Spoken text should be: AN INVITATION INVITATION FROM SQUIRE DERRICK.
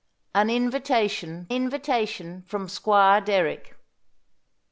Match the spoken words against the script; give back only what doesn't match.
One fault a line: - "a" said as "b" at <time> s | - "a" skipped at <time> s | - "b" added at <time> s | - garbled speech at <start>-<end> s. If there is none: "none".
none